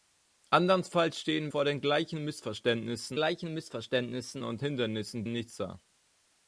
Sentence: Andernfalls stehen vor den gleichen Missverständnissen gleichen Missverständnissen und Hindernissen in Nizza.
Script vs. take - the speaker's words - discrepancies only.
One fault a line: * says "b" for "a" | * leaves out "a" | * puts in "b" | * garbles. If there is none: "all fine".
all fine